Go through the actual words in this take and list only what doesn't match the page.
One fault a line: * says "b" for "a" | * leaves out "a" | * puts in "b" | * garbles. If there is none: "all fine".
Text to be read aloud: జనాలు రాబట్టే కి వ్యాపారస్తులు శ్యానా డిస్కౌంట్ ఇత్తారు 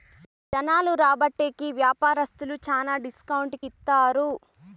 all fine